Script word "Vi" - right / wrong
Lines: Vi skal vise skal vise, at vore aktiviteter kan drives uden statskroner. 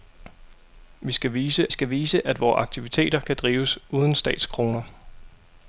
right